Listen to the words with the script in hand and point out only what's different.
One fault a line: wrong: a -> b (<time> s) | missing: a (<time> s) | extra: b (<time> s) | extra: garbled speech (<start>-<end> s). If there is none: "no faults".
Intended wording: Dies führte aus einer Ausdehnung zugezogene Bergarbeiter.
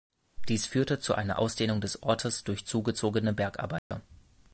wrong: aus -> zu (1.0 s)
extra: des Ortes durch (1.8 s)